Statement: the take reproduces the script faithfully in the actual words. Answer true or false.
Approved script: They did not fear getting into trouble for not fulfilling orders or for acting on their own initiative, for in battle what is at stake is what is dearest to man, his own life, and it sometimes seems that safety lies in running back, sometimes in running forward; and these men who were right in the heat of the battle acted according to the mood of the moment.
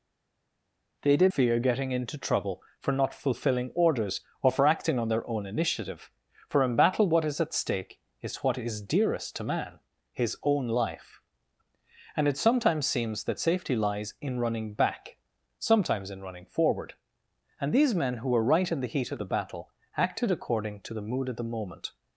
false